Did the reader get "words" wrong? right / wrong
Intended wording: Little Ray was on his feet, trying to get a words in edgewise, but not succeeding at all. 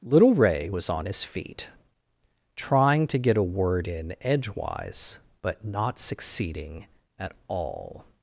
wrong